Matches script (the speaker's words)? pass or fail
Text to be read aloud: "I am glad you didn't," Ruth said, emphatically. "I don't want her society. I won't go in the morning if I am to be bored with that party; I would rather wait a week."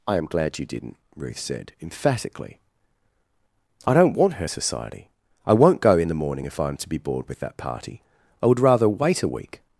pass